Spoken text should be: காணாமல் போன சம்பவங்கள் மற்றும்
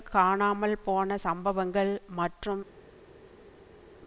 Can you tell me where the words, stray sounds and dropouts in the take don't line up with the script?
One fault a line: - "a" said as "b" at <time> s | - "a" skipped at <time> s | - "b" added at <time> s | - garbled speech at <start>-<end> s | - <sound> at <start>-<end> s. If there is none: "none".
none